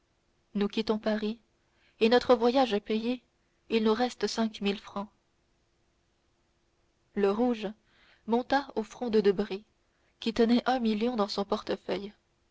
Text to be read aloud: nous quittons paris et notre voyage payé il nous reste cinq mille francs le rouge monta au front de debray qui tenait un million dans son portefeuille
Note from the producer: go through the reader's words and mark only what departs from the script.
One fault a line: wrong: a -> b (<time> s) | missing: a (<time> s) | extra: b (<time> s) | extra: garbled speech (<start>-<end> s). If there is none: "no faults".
no faults